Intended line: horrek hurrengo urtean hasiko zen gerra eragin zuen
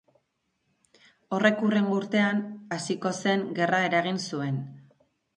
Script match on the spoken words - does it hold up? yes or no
yes